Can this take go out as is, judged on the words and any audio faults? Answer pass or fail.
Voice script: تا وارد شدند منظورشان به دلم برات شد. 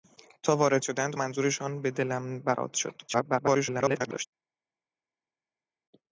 fail